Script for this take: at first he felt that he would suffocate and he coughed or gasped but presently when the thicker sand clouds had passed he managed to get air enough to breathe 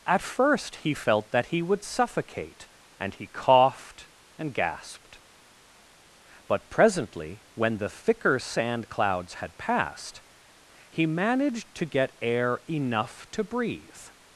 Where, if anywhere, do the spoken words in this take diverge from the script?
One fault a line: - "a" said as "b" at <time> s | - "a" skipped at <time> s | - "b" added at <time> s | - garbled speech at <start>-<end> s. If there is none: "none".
- "or" said as "and" at 4.4 s